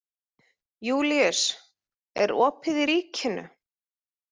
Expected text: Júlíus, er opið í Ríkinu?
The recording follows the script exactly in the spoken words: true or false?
true